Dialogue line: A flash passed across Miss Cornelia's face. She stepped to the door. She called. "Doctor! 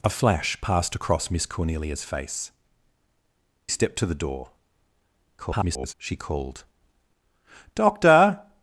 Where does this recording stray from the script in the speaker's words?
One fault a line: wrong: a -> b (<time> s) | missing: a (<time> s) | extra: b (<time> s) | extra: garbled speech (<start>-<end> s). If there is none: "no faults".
missing: She (2.5 s)
extra: garbled speech (5.4-5.9 s)